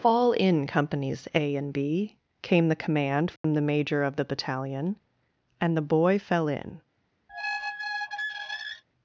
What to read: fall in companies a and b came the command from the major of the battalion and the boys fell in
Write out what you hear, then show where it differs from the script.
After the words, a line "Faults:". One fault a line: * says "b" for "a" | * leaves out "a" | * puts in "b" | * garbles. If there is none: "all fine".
fall in companies a and b came the command from the major of the battalion and the boy fell in
Faults:
* says "boy" for "boys"